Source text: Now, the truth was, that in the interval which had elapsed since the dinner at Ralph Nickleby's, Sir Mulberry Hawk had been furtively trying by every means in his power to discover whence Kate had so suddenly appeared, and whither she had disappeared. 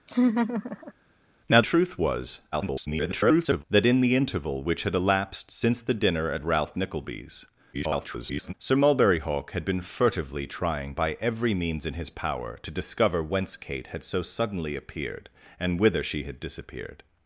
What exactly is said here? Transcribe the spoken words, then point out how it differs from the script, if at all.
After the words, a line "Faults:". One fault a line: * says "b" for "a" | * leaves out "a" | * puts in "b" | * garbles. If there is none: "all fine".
Now, truth was, [garbled] that in the interval which had elapsed since the dinner at Ralph Nickleby's, [garbled] Sir Mulberry Hawk had been furtively trying by every means in his power to discover whence Kate had so suddenly appeared, and whither she had disappeared.
Faults:
* leaves out "the"
* garbles
* garbles